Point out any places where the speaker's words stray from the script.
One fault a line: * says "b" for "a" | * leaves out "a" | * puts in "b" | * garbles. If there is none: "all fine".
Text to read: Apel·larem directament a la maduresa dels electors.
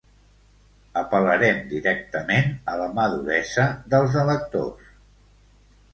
all fine